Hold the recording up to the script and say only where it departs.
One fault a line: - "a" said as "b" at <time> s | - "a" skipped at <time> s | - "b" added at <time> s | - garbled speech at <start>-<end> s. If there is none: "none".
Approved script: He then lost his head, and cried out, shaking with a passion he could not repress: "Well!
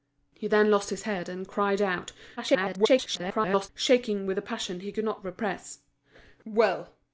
- garbled speech at 2.4-3.7 s